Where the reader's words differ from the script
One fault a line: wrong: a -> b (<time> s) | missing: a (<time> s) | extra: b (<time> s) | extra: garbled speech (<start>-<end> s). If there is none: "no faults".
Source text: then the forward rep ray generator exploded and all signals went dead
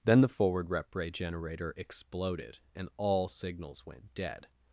no faults